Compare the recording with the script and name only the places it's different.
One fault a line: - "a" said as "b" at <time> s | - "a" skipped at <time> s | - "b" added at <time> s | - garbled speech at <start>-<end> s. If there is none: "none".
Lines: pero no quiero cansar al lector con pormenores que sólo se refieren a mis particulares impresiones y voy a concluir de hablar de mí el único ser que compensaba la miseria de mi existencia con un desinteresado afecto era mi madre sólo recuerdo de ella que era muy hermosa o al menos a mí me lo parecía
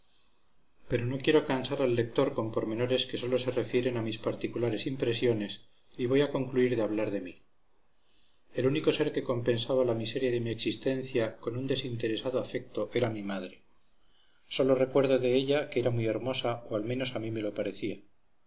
none